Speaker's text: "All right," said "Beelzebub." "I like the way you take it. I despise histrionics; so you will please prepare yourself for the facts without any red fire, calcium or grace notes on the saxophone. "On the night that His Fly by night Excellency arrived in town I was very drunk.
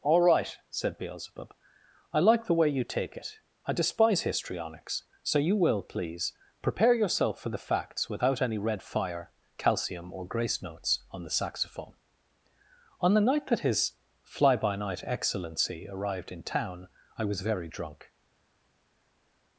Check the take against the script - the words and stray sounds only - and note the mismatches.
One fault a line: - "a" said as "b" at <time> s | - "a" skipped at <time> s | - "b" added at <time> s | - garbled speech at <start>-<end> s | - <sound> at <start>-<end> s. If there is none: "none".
none